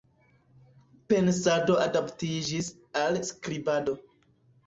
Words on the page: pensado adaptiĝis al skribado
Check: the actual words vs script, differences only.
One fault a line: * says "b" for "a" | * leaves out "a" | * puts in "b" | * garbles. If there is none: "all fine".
all fine